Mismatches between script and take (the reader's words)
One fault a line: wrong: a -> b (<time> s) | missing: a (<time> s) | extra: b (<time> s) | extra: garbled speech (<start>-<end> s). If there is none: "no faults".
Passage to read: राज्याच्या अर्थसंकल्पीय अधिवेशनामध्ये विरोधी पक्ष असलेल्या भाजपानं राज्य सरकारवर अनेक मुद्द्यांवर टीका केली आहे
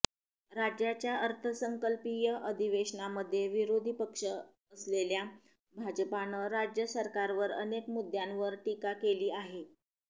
no faults